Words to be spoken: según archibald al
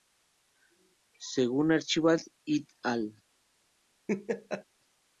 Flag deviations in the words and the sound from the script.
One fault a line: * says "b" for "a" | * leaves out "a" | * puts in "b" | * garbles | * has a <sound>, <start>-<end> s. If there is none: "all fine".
* puts in "et"
* has a laugh, 4.1-4.6 s